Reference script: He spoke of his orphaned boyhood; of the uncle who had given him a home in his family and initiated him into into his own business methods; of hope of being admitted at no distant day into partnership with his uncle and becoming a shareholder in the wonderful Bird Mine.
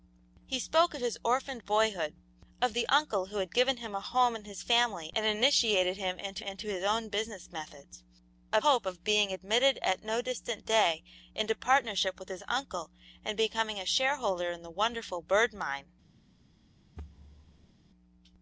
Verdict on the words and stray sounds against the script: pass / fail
fail